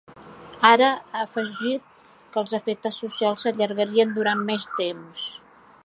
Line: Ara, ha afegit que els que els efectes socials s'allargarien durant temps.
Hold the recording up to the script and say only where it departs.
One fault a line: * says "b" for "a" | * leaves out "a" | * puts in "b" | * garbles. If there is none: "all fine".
* leaves out "que els"
* puts in "més"